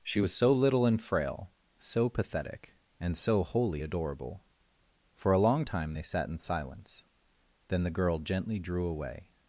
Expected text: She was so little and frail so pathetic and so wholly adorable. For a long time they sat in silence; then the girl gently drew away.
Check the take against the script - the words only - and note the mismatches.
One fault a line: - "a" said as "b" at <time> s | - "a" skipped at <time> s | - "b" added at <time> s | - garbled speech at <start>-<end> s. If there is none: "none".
none